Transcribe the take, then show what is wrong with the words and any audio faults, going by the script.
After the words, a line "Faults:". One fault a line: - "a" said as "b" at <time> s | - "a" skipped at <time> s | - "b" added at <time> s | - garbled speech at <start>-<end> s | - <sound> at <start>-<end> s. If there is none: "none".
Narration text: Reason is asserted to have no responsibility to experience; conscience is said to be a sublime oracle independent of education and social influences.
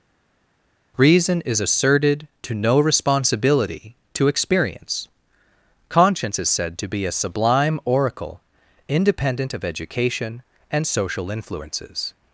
Reason is asserted to no responsibility to experience; conscience is said to be a sublime oracle independent of education and social influences.
Faults:
- "have" skipped at 2.5 s